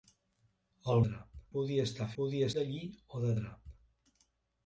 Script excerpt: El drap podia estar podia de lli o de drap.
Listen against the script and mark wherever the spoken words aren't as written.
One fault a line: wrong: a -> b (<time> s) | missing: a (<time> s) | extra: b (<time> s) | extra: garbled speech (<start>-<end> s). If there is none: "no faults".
no faults